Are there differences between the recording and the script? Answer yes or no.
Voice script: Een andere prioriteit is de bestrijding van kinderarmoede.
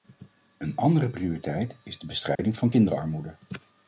no